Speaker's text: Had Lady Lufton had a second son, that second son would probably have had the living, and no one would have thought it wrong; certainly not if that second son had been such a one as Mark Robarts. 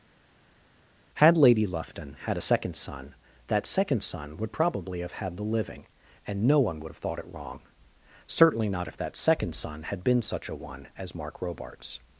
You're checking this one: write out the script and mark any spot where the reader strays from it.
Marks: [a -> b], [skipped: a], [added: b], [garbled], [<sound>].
Had Lady Lufton had a second son, that second son would probably have had the living, and no one would have thought it wrong; certainly not if that second son had been such a one as Mark Robarts.